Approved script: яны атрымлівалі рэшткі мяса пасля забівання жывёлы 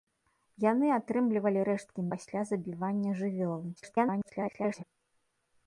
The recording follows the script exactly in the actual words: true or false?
false